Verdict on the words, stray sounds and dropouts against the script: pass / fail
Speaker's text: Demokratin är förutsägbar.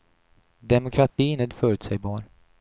fail